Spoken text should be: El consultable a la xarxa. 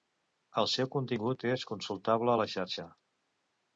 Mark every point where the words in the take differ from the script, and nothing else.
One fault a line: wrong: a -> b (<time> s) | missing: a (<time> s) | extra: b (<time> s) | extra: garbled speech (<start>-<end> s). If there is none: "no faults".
extra: seu contingut és (0.8 s)